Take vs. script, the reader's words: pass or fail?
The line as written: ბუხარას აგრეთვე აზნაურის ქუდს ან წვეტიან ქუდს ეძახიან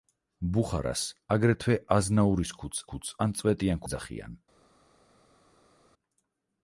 fail